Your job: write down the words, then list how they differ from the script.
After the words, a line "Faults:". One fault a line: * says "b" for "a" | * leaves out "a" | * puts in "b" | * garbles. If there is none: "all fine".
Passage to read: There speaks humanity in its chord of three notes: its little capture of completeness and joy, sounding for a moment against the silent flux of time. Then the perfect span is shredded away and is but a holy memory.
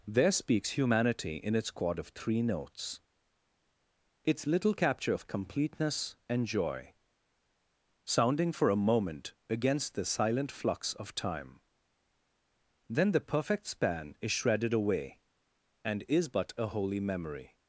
There speaks humanity in its chord of three notes: its little capture of completeness and joy, sounding for a moment against the silent flux of time. Then the perfect span is shredded away and is but a holy memory.
Faults:
all fine